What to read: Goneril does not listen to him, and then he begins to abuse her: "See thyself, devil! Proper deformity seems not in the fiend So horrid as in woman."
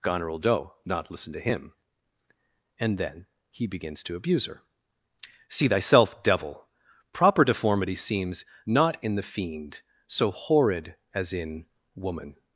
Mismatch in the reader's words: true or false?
true